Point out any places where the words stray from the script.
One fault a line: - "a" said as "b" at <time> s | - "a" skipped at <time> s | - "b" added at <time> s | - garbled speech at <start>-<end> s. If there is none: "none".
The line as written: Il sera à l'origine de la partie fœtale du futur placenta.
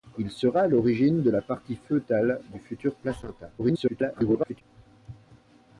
- garbled speech at 3.6-4.6 s